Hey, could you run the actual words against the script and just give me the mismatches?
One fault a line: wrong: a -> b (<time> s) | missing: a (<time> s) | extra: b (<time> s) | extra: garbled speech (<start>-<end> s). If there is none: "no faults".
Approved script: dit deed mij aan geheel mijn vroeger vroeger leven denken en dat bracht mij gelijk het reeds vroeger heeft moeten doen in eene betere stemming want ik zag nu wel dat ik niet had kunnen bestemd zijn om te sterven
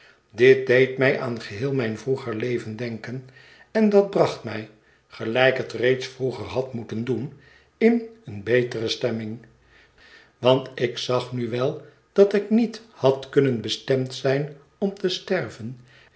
missing: vroeger (2.4 s)
wrong: heeft -> had (6.5 s)